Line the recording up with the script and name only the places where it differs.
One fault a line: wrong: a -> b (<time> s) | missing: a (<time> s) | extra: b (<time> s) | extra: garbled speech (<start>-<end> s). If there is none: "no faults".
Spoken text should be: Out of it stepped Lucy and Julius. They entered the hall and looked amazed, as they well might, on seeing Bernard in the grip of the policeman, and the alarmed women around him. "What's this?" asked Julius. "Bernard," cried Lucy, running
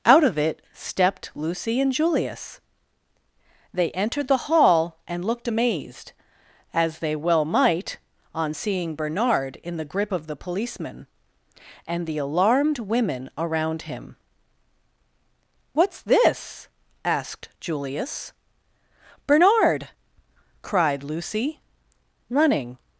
no faults